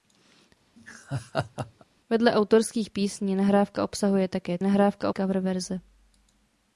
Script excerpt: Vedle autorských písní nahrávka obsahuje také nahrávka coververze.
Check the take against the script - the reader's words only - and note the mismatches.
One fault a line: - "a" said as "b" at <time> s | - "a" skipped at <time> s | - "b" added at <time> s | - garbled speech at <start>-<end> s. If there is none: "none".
none